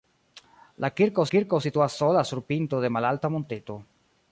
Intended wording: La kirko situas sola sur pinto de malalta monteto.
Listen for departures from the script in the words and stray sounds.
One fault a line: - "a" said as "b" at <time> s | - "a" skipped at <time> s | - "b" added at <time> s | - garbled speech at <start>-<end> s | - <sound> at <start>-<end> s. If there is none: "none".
- "kirko" added at 1.3 s